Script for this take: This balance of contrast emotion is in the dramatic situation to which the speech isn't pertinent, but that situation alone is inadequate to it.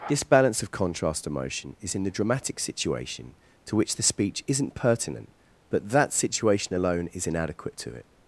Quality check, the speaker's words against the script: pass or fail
pass